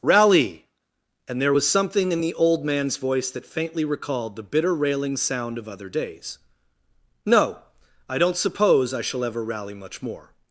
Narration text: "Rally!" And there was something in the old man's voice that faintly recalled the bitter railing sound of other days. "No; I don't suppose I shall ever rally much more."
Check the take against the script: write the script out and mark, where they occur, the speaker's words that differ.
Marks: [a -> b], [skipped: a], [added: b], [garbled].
"Rally!" And there was something in the old man's voice that faintly recalled the bitter railing sound of other days. "No; I don't suppose I shall ever rally much more."